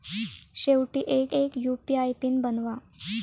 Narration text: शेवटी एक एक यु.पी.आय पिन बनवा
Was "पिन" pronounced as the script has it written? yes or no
yes